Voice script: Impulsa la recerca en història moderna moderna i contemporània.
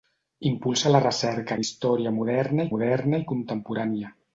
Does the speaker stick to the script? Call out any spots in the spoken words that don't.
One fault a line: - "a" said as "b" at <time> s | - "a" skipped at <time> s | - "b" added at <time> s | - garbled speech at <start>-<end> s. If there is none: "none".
none